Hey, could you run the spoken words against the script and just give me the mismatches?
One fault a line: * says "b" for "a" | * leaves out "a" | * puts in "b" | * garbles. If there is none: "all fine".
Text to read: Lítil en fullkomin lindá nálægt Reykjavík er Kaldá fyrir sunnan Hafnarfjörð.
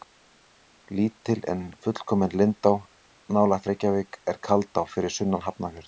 all fine